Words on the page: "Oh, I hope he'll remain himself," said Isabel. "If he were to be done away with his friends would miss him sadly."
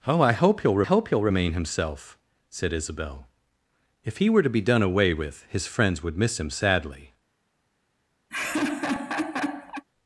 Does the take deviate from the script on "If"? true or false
false